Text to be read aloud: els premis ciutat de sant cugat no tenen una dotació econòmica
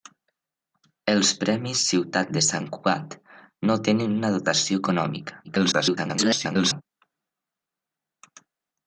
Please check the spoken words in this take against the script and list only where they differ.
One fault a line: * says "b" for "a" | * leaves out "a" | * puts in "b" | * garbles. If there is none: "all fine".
* garbles